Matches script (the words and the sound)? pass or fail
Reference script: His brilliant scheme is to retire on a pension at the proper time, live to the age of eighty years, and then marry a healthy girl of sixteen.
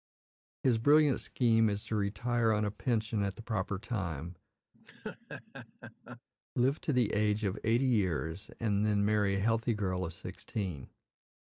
fail